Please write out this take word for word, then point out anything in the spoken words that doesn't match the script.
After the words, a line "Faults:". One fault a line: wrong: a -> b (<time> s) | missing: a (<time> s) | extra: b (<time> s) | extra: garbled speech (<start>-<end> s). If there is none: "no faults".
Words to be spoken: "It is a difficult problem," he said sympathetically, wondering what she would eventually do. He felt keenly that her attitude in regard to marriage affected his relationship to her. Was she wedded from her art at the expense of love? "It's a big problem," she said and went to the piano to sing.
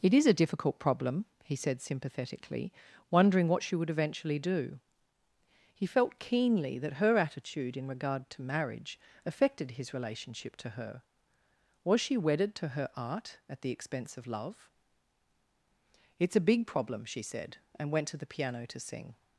"It is a difficult problem," he said sympathetically, wondering what she would eventually do. He felt keenly that her attitude in regard to marriage affected his relationship to her. Was she wedded to her art at the expense of love? "It's a big problem," she said and went to the piano to sing.
Faults:
wrong: from -> to (12.6 s)